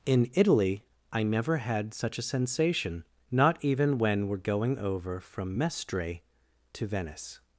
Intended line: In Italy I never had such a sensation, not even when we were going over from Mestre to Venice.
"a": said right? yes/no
yes